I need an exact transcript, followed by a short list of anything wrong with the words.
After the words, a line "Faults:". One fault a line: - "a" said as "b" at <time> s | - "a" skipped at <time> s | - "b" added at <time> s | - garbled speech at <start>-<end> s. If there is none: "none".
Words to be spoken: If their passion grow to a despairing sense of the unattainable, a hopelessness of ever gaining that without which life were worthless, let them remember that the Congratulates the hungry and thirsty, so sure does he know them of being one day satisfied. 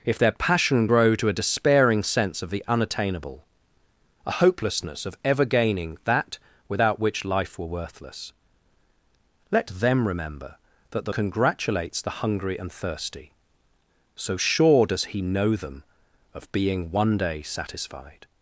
If their passion grow to a despairing sense of the unattainable, a hopelessness of ever gaining that without which life were worthless, let them remember that the Congratulates the hungry and thirsty, so sure does he know them of being one day satisfied.
Faults:
none